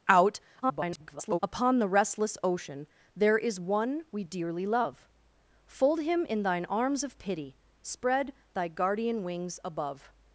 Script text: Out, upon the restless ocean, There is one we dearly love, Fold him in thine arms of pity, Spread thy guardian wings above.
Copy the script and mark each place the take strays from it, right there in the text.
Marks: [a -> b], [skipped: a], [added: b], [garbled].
Out, [garbled] upon the restless ocean, There is one we dearly love, Fold him in thine arms of pity, Spread thy guardian wings above.